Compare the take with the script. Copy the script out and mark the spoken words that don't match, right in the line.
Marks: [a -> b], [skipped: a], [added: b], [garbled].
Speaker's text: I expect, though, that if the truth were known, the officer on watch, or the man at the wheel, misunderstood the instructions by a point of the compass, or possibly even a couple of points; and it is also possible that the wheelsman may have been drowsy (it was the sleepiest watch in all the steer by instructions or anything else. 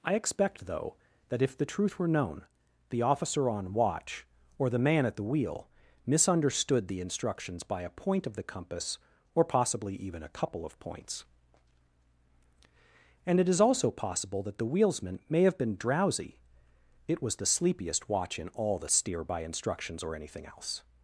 I expect, though, that if the truth were known, the officer on watch, or the man at the wheel, misunderstood the instructions by a point of the compass, or possibly even a couple of points; and it is also possible that the wheelsman may have been drowsy (it was the sleepiest watch in all the steer by instructions or anything else.